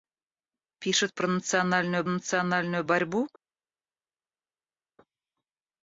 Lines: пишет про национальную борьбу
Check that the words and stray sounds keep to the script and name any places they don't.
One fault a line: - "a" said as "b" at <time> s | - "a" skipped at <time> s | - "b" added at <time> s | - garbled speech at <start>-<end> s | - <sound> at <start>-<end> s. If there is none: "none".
- "национальную" added at 2.1 s